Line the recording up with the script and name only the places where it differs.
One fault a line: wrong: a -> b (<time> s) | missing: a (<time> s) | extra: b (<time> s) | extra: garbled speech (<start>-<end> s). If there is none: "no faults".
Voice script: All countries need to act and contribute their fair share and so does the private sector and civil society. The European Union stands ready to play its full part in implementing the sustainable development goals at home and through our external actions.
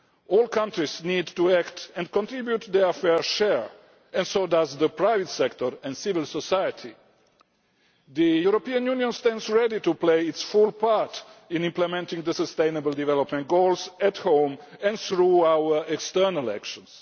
no faults